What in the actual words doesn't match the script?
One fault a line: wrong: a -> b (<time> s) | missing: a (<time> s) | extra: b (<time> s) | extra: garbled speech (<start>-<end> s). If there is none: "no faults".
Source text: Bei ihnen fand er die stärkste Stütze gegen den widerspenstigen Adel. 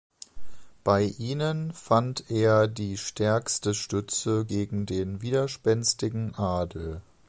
no faults